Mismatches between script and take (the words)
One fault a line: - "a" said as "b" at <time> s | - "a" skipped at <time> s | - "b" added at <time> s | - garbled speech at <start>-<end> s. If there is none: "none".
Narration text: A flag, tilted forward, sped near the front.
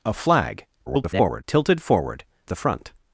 - garbled speech at 0.9-1.4 s
- "sped near" skipped at 2.2 s